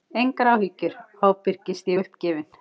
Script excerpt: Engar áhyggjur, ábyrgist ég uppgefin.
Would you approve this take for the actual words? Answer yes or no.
yes